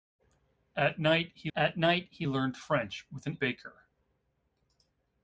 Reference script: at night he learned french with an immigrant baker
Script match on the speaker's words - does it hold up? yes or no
no